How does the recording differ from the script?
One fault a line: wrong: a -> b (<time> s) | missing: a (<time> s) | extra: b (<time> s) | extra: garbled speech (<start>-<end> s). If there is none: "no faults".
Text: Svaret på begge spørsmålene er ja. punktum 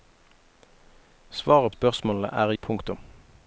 missing: på begge (1.7 s)
missing: ja (2.5 s)